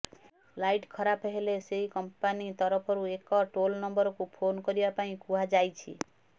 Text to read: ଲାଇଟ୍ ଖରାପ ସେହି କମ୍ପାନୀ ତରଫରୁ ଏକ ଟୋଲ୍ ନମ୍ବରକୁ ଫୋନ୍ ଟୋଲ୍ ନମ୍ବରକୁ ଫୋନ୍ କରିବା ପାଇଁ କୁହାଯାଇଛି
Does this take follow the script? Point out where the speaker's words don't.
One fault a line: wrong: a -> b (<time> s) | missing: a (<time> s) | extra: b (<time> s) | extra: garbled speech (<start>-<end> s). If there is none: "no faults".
extra: ହେଲେ (1.3 s)
missing: ଟୋଲ୍ ନମ୍ବରକୁ ଫୋନ୍ (4.6 s)